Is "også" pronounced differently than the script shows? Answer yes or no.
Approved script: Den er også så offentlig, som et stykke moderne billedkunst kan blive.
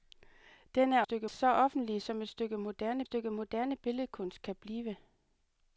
yes